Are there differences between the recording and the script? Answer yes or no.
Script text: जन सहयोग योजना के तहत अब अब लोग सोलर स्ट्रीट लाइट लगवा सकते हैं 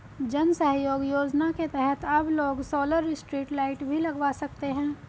yes